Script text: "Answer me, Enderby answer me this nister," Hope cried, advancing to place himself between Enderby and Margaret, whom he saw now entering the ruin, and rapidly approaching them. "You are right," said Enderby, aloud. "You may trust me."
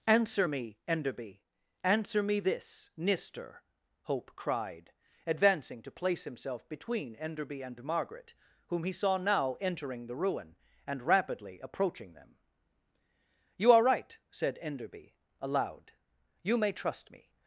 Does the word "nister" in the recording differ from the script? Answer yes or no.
no